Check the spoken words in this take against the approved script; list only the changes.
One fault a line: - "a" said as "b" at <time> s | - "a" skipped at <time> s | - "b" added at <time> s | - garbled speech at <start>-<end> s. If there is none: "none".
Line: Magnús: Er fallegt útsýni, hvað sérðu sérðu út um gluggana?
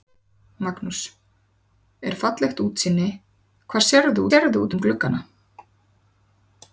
none